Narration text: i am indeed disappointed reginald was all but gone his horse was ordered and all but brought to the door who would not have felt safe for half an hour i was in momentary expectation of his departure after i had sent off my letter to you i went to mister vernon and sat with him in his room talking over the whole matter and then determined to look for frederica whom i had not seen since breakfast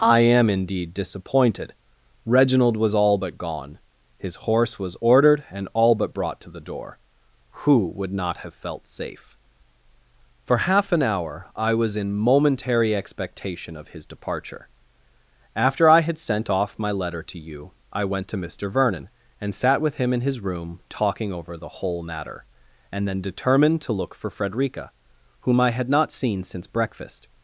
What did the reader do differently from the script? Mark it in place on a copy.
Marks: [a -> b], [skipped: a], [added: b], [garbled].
i am indeed disappointed reginald was all but gone his horse was ordered and all but brought to the door who would not have felt safe for half an hour i was in momentary expectation of his departure after i had sent off my letter to you i went to mister vernon and sat with him in his room talking over the whole matter and then determined to look for frederica whom i had not seen since breakfast